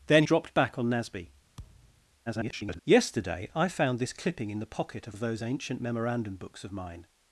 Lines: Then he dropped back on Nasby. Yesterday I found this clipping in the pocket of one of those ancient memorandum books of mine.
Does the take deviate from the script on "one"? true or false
true